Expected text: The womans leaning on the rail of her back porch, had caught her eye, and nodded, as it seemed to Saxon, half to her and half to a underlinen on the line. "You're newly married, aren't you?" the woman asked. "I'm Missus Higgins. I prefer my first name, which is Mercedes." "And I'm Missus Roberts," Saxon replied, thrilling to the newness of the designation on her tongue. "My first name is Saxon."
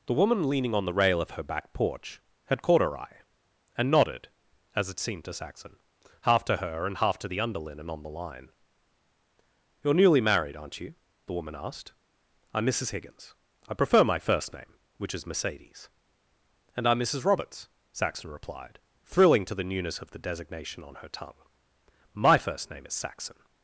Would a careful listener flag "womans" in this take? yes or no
yes